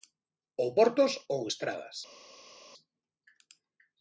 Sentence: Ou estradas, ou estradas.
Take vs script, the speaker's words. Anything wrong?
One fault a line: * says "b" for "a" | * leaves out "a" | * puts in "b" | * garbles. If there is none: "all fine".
* says "portos" for "estradas"